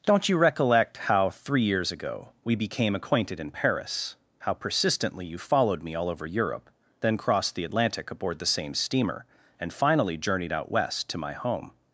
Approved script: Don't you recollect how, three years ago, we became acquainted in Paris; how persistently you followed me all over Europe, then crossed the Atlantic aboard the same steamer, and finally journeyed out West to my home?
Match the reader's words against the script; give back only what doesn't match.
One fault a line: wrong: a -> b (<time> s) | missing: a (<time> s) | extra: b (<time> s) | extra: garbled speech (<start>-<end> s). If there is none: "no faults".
no faults